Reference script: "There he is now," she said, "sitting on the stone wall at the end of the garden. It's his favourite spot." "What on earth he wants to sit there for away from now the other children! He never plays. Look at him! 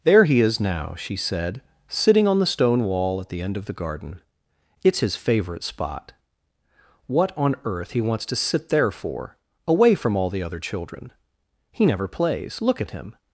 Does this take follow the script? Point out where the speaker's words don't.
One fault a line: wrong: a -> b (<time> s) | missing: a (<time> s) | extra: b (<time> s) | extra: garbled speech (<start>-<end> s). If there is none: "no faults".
wrong: now -> all (10.2 s)